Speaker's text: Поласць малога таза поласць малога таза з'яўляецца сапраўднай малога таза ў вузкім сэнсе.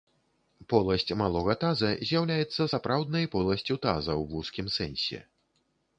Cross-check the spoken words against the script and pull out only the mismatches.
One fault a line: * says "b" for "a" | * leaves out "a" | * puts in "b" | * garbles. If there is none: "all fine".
* leaves out "поласць малога таза"
* says "поласцю" for "малога"